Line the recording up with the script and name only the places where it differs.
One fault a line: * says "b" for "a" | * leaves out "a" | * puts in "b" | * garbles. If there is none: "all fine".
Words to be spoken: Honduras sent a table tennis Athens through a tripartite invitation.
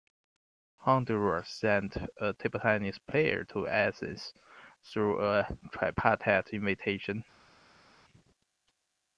* puts in "player to"